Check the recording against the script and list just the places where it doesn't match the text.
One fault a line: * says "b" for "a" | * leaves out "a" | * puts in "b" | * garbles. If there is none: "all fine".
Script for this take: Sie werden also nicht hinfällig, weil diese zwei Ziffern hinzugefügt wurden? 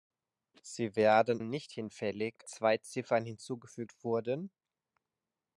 * leaves out "also"
* leaves out "weil diese"